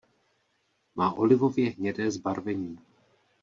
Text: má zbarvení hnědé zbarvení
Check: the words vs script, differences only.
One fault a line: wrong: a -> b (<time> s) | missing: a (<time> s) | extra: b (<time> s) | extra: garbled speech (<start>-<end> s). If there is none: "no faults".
wrong: zbarvení -> olivově (1.1 s)